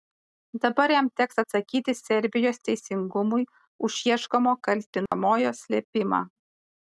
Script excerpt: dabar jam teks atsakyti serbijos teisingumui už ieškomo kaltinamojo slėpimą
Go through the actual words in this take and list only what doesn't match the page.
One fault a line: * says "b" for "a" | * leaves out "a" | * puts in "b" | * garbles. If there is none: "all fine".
all fine